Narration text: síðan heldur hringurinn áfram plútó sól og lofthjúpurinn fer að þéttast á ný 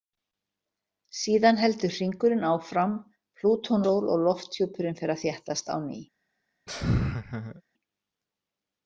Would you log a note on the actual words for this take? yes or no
no